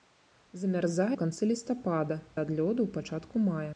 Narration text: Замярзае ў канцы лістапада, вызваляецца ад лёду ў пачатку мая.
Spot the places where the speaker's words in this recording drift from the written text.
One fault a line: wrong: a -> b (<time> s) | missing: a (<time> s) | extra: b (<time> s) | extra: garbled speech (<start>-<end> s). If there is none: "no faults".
missing: ў (1.2 s)
missing: вызваляецца (2.2 s)